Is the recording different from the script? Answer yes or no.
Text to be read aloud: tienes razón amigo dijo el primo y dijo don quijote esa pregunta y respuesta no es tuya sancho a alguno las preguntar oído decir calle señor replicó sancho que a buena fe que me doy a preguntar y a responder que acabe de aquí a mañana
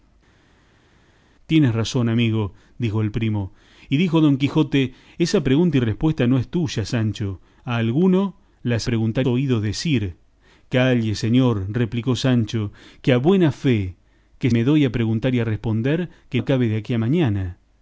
no